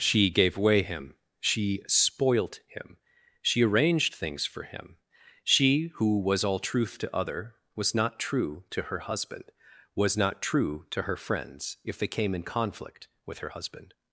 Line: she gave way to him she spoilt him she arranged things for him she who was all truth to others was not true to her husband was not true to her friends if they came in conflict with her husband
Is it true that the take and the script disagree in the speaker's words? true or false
true